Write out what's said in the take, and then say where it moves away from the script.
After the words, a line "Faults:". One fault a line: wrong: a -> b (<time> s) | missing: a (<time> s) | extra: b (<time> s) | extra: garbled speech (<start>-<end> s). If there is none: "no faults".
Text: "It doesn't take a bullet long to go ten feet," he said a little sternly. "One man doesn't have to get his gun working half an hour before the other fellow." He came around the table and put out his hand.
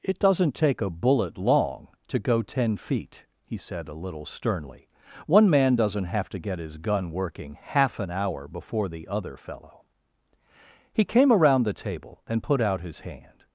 "It doesn't take a bullet long to go ten feet," he said a little sternly. "One man doesn't have to get his gun working half an hour before the other fellow." He came around the table and put out his hand.
Faults:
no faults